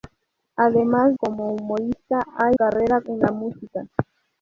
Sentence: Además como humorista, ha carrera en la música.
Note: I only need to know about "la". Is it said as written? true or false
true